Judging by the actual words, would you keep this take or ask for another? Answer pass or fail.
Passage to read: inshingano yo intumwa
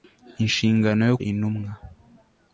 pass